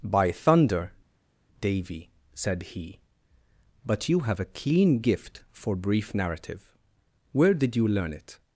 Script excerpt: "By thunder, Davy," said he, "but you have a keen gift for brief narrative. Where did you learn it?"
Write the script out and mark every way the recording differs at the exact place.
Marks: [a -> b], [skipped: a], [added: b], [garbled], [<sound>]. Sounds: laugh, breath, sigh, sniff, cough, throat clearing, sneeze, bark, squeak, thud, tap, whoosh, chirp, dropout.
"By thunder, Davy," said he, "but you have a keen gift for brief narrative. Where did you learn it?"